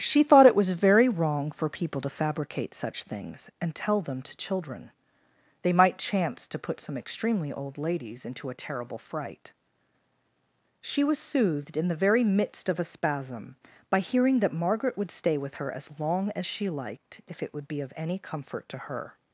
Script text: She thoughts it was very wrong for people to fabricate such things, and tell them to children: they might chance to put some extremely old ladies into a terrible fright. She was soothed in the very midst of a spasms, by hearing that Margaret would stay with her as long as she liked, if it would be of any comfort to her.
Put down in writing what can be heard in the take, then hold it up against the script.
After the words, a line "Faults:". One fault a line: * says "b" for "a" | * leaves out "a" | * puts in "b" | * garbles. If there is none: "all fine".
She thought it was very wrong for people to fabricate such things, and tell them to children: they might chance to put some extremely old ladies into a terrible fright. She was soothed in the very midst of a spasm, by hearing that Margaret would stay with her as long as she liked, if it would be of any comfort to her.
Faults:
* says "thought" for "thoughts"
* says "spasm" for "spasms"